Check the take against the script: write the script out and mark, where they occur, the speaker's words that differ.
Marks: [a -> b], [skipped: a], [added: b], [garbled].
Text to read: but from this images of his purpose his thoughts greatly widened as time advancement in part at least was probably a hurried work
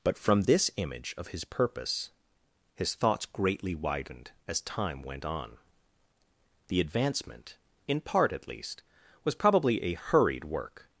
but from this [images -> image] of his purpose his thoughts greatly widened as time [added: went on the] advancement in part at least was probably a hurried work